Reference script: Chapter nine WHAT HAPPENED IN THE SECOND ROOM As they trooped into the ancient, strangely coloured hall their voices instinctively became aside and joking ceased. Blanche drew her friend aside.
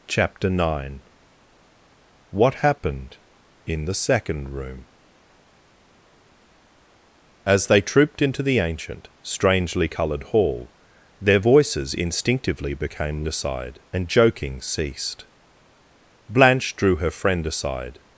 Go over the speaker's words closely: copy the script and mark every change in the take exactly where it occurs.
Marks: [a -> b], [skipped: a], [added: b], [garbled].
Chapter nine WHAT HAPPENED IN THE SECOND ROOM As they trooped into the ancient, strangely coloured hall their voices instinctively became aside and joking ceased. Blanche drew her friend aside.